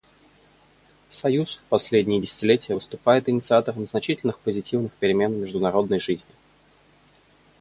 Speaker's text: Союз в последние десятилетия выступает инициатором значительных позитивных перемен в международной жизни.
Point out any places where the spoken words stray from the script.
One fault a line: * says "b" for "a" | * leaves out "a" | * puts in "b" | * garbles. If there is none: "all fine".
all fine